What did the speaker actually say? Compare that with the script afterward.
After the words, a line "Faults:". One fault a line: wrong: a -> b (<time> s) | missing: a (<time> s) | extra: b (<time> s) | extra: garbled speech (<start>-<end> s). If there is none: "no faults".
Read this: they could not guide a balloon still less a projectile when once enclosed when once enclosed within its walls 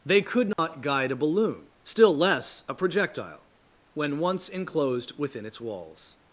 they could not guide a balloon still less a projectile when once enclosed within its walls
Faults:
missing: when once enclosed (5.2 s)